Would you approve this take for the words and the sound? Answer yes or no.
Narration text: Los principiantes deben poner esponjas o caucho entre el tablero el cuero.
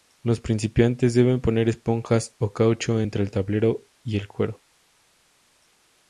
no